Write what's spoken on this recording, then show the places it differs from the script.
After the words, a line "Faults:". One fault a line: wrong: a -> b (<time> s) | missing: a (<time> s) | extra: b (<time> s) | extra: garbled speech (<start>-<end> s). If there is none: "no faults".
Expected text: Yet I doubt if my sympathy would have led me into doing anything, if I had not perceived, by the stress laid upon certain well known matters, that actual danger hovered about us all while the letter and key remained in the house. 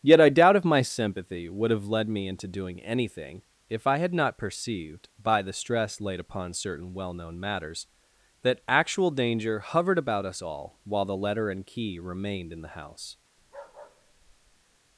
Yet I doubt if my sympathy would have led me into doing anything, if I had not perceived, by the stress laid upon certain well known matters, that actual danger hovered about us all while the letter and key remained in the house.
Faults:
no faults